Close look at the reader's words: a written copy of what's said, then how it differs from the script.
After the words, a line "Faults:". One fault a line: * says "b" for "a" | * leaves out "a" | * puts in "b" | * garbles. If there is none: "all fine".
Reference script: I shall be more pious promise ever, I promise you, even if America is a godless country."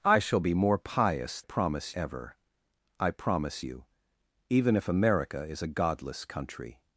I shall be more pious promise ever, I promise you, even if America is a godless country."
Faults:
all fine